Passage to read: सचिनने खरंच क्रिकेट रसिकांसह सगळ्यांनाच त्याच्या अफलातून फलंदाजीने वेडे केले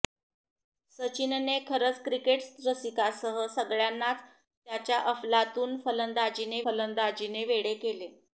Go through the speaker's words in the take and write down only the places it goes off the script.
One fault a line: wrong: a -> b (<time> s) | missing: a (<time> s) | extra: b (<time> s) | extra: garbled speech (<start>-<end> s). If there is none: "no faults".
extra: फलंदाजीने (6.6 s)